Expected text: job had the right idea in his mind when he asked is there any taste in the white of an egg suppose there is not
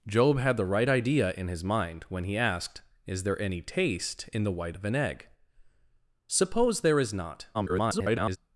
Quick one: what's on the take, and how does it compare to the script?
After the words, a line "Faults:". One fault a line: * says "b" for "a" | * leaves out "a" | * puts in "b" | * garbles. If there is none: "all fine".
job had the right idea in his mind when he asked is there any taste in the white of an egg suppose there is not [garbled]
Faults:
* garbles